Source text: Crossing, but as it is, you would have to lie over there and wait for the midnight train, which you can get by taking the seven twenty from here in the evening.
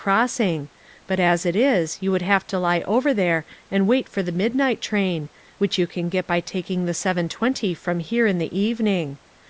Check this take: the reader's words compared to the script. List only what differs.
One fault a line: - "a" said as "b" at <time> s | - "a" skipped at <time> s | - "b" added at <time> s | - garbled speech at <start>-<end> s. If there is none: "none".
none